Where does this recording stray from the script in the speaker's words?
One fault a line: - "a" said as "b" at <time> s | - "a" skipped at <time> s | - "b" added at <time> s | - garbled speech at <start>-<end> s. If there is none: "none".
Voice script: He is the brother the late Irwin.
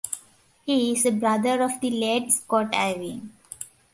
- "of" added at 1.6 s
- "Scott" added at 2.3 s